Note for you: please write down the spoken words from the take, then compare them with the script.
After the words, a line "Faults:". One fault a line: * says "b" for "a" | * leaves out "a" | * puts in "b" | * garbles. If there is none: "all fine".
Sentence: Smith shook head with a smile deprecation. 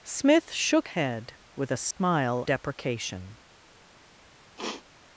Smith shook head with a smile deprecation.
Faults:
all fine